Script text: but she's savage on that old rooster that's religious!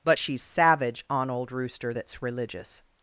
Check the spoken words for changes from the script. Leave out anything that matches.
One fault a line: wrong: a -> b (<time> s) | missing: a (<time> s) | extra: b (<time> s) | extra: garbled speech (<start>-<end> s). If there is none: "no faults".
missing: that (1.3 s)